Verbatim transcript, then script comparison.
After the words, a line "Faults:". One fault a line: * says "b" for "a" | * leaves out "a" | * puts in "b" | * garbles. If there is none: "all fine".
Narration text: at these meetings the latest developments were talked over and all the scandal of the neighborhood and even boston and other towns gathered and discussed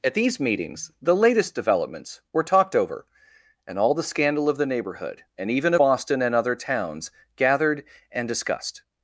at these meetings the latest developments were talked over and all the scandal of the neighborhood and even boston and other towns gathered and discussed
Faults:
all fine